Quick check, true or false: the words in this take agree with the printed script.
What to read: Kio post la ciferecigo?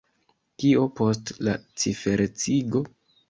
true